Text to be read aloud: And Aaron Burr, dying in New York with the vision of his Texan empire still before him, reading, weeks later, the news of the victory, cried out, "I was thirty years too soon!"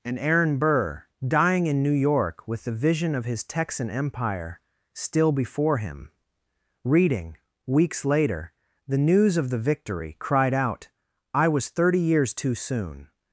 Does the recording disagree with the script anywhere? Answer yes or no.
no